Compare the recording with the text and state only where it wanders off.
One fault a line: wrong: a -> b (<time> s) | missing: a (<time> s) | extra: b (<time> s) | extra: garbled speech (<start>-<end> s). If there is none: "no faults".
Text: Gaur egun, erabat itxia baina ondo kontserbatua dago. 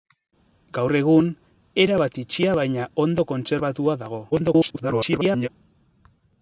extra: garbled speech (4.3-5.5 s)